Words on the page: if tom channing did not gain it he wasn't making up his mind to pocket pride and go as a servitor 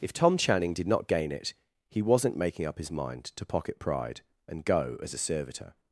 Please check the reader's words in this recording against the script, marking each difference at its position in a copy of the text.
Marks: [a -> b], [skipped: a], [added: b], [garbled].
if tom channing did not gain it he wasn't making up his mind to pocket pride and go as a servitor